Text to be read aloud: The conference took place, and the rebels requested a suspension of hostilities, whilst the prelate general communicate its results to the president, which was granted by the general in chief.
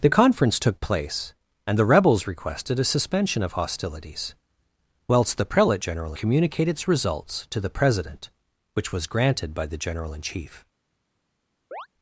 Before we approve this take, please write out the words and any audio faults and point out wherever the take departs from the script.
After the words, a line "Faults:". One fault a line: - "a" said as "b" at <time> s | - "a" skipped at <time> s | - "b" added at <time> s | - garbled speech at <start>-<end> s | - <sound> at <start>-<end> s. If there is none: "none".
The conference took place, and the rebels requested a suspension of hostilities, whilst the prelate general communicate its results to the president, which was granted by the general in chief.
Faults:
- chirp at 11.7-11.9 s